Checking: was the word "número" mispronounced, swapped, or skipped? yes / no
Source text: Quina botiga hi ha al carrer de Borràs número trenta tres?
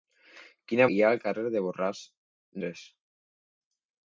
yes